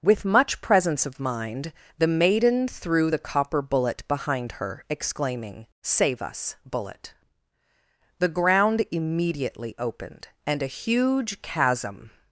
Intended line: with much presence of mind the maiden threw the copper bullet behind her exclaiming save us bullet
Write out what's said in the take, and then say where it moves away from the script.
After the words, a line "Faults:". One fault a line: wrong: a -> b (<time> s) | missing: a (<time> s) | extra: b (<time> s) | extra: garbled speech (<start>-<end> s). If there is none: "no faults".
with much presence of mind the maiden threw the copper bullet behind her exclaiming save us bullet the ground immediately opened and a huge chasm
Faults:
extra: the ground immediately opened and a huge chasm (8.2 s)